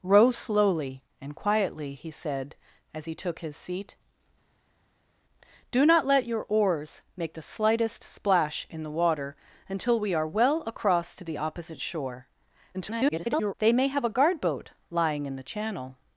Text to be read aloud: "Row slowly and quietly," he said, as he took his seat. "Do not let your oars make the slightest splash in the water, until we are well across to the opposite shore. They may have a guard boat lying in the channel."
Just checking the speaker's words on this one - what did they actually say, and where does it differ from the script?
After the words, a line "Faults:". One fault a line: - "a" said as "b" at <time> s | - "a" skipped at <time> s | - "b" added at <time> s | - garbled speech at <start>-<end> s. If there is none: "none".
"Row slowly and quietly," he said, as he took his seat. "Do not let your oars make the slightest splash in the water, until we are well across to the opposite shore. [garbled] They may have a guard boat lying in the channel."
Faults:
- garbled speech at 12.7-13.5 s